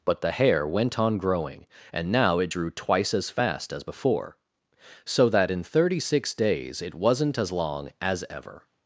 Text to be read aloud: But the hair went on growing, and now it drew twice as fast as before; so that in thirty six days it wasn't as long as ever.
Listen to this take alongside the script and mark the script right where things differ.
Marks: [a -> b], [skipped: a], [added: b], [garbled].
But the hair went on growing, and now it drew twice as fast as before; so that in thirty six days it wasn't as long as ever.